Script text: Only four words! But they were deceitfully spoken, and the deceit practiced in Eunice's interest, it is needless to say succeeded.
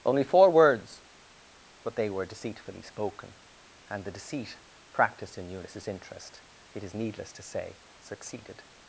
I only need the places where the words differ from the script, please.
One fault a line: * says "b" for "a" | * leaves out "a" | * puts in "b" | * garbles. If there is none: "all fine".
all fine